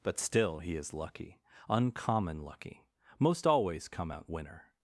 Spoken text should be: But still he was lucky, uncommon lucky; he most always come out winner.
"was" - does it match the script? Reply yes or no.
no